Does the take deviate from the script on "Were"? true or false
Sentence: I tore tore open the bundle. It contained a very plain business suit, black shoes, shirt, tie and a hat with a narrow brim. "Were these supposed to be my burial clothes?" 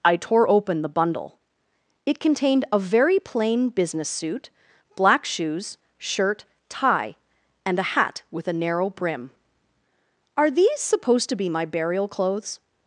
true